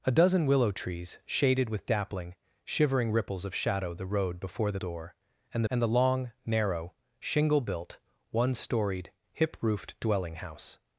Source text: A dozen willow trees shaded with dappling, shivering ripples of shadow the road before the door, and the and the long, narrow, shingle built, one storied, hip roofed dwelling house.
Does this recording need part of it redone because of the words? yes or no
no